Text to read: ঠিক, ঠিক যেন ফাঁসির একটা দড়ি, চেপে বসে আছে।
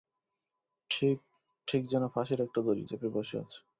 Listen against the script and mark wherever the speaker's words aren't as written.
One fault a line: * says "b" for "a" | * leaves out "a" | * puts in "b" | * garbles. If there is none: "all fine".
all fine